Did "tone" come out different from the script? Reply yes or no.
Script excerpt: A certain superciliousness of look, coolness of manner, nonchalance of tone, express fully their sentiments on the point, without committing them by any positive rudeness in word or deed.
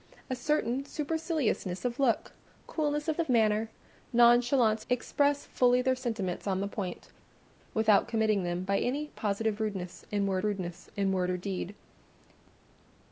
yes